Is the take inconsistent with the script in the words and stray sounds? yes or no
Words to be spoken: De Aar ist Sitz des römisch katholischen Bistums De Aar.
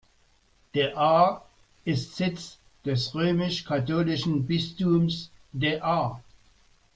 no